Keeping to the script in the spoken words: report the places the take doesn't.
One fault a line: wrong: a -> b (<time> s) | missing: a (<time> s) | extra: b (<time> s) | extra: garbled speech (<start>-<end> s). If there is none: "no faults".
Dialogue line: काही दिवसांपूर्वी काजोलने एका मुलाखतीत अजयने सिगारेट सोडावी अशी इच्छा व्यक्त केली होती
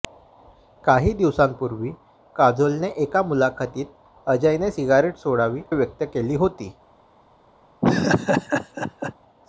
missing: अशी इच्छा (5.6 s)